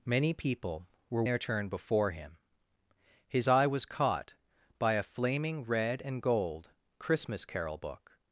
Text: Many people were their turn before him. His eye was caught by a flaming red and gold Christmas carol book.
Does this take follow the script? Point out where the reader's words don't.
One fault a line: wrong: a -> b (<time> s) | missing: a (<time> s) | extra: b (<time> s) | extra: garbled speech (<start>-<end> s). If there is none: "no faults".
no faults